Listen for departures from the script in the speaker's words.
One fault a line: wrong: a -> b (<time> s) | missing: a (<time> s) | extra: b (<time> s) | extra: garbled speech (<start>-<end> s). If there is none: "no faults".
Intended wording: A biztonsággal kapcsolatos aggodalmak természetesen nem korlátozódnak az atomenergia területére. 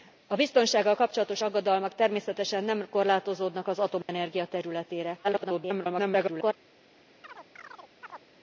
extra: garbled speech (5.2-6.5 s)